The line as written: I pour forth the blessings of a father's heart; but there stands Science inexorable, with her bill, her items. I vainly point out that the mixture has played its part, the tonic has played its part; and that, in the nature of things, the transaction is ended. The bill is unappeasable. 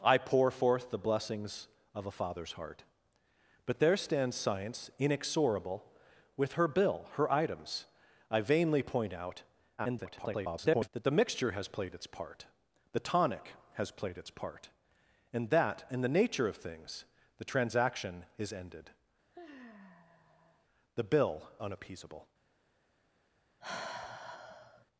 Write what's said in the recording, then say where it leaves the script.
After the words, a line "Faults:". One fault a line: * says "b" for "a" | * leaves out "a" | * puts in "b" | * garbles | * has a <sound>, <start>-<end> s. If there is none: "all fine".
I pour forth the blessings of a father's heart; but there stands Science inexorable, with her bill, her items. I vainly point out [garbled] that the mixture has played its part, the tonic has played its part; and that, in the nature of things, the transaction is ended. The bill unappeasable.
Faults:
* garbles
* has a sigh, 19.3-20.7 s
* leaves out "is"
* has a sigh, 23.6-24.9 s